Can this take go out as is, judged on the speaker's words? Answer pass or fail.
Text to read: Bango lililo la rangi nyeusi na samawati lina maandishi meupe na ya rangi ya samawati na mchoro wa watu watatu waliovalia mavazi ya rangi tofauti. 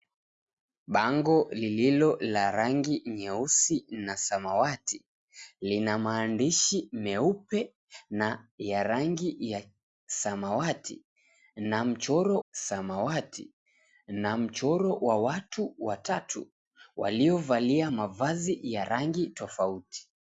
fail